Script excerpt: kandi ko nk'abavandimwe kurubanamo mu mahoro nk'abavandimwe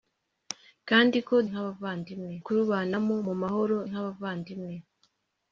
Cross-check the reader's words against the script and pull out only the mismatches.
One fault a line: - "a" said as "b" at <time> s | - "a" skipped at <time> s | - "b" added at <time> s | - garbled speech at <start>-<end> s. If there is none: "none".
none